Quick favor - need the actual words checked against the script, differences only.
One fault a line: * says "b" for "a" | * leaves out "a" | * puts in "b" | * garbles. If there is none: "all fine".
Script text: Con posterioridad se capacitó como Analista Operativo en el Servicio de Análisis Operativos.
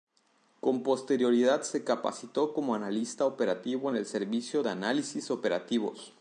all fine